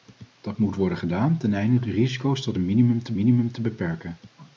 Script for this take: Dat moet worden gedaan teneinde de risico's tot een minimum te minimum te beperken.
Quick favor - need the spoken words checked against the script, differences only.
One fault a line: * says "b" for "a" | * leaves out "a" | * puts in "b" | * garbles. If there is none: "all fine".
all fine